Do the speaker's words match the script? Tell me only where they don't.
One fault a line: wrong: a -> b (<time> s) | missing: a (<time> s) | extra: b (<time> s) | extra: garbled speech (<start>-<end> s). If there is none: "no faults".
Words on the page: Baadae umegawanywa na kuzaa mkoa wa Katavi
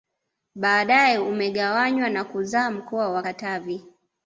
no faults